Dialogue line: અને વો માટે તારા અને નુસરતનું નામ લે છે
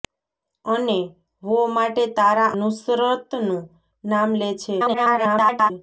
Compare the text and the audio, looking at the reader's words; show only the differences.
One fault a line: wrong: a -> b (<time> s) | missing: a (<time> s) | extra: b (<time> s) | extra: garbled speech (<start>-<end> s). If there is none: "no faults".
missing: અને (2.5 s)
extra: garbled speech (4.8-5.7 s)